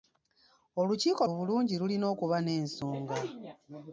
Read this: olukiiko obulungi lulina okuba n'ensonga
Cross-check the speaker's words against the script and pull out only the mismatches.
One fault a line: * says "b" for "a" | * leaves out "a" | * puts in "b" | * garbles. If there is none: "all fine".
all fine